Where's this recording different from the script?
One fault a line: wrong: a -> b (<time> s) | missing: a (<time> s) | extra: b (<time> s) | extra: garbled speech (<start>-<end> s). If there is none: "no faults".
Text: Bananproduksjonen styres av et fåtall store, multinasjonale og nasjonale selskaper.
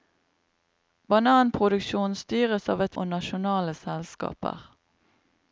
missing: fåtall store multinasjonale (3.0 s)